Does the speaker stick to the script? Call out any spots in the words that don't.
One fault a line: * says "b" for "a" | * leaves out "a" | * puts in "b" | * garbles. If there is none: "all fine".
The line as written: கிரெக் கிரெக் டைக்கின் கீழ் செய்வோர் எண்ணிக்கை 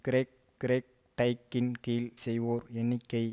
all fine